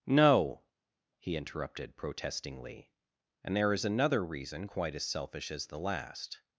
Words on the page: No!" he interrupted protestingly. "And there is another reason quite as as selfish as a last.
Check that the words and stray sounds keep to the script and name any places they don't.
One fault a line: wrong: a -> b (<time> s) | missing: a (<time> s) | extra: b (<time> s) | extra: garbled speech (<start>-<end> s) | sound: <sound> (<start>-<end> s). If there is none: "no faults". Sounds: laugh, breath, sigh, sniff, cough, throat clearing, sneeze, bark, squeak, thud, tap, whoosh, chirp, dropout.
missing: as (5.0 s)
wrong: a -> the (5.7 s)